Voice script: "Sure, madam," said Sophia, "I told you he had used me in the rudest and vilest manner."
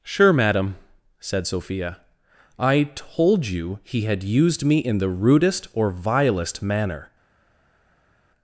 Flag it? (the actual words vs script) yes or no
yes